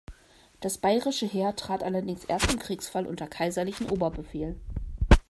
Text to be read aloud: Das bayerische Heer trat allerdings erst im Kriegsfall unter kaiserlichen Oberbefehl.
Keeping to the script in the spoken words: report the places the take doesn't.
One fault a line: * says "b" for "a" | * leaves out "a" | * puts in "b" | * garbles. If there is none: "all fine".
all fine